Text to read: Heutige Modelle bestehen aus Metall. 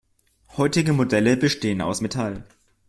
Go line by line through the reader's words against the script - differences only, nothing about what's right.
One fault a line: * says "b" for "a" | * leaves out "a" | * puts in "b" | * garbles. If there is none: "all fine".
all fine